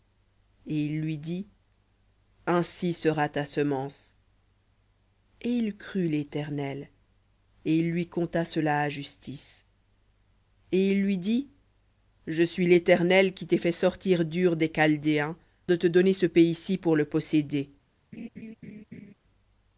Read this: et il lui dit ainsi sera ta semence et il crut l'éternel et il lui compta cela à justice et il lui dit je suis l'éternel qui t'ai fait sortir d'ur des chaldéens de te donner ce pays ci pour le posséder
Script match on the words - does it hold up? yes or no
yes